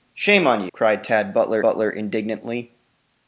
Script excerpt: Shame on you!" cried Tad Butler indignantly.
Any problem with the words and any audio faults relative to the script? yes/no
yes